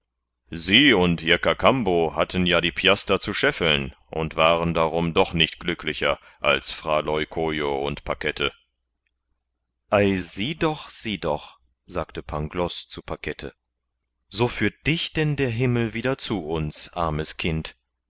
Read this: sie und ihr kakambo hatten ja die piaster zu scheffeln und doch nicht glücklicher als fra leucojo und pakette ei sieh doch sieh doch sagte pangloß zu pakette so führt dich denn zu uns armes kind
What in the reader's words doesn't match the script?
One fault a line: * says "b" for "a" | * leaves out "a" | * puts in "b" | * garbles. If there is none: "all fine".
* puts in "waren darum"
* puts in "der himmel wieder"